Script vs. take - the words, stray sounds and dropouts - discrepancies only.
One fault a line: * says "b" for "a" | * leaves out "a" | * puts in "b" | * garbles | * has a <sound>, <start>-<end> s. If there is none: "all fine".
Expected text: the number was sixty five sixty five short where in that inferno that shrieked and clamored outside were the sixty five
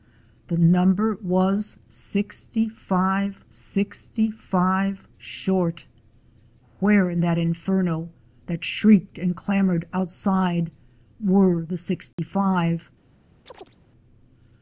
* has a dropout, 12.1-12.2 s
* has a chirp, 13.5-13.8 s